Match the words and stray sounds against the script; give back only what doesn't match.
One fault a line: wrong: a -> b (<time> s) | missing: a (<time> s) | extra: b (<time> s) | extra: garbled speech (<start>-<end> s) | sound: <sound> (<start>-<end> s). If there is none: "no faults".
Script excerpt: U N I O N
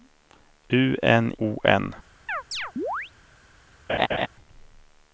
missing: I (1.3 s)
sound: chirp (2.3-3.1 s)
sound: laugh (3.9-4.3 s)